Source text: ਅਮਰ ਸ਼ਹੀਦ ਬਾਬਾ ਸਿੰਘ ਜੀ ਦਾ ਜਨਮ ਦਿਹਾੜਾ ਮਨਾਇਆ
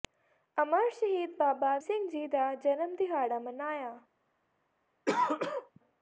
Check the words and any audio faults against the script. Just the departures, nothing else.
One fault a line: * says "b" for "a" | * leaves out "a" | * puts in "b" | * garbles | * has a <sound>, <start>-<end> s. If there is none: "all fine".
* has a throat clearing, 5.1-5.8 s